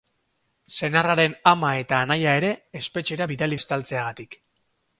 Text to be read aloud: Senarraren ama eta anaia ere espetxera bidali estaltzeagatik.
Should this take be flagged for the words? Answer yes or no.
no